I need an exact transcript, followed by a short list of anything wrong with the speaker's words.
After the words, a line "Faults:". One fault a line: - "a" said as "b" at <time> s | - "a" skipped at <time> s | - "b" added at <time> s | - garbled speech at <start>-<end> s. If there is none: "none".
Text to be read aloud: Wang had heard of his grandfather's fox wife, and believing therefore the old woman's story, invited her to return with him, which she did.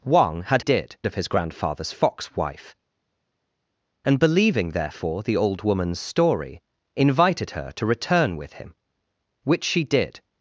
Wang had did of his grandfather's fox wife, and believing therefore the old woman's story, invited her to return with him, which she did.
Faults:
- "heard" said as "did" at 0.6 s